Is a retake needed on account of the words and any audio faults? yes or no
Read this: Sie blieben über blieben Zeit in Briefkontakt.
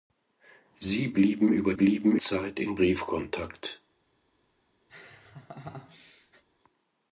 yes